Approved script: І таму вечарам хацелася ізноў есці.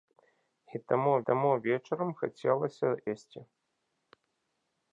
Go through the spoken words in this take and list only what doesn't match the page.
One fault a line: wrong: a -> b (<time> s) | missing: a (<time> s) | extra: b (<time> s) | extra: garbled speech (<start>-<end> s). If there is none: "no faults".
extra: таму (1.3 s)
missing: ізноў (2.9 s)